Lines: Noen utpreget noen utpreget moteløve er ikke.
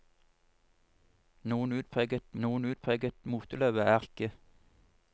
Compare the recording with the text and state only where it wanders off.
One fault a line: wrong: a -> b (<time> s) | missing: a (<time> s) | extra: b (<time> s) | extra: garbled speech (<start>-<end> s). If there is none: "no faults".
no faults